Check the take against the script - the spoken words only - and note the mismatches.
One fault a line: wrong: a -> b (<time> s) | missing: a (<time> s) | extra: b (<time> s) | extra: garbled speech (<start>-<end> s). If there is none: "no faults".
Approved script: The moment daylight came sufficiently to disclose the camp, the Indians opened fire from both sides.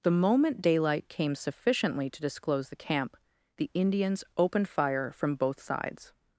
no faults